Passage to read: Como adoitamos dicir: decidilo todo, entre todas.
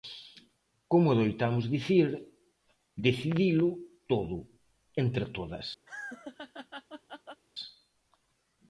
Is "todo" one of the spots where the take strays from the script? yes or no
no